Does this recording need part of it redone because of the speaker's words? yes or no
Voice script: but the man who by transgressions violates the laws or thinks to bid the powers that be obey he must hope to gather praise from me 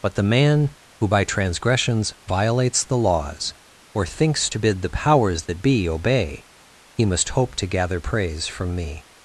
no